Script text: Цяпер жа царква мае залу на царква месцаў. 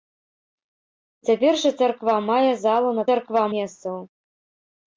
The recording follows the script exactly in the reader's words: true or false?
true